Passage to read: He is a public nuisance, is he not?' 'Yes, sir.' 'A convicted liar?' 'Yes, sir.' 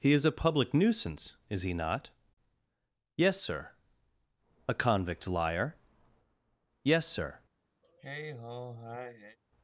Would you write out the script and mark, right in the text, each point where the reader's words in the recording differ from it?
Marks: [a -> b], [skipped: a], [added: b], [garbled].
He is a public nuisance, is he not?' 'Yes, sir.' 'A [convicted -> convict] liar?' 'Yes, sir.'